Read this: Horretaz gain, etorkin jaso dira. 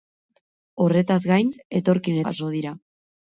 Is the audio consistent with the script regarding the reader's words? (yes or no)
yes